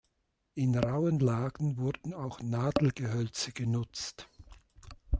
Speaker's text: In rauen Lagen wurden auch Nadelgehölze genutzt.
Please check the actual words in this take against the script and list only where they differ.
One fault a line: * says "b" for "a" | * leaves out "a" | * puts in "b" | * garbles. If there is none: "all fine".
all fine